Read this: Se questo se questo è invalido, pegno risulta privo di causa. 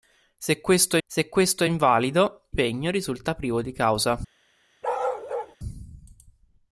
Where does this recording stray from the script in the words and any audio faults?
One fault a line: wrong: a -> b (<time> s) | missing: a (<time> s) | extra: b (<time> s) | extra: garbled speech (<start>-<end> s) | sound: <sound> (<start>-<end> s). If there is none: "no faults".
sound: bark (4.8-5.6 s)